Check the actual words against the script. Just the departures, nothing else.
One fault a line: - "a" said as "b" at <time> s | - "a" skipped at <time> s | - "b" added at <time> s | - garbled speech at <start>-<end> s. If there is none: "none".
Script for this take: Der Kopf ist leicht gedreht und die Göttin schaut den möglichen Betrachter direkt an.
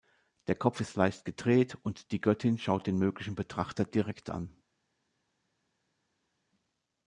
none